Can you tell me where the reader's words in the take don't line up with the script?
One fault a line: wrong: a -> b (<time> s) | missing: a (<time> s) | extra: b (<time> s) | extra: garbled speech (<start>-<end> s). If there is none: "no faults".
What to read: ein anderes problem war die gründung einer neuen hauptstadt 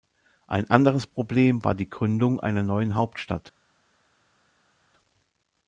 no faults